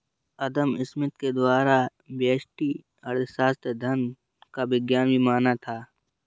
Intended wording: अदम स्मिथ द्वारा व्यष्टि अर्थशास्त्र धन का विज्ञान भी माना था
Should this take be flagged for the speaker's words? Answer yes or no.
yes